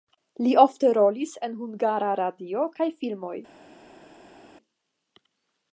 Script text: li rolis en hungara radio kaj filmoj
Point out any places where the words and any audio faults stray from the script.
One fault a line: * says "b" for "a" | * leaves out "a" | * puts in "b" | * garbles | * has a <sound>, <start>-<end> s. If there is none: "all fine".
* puts in "ofte"